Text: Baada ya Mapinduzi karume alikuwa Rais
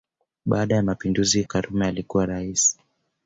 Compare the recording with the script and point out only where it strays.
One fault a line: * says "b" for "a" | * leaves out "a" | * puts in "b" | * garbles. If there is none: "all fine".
all fine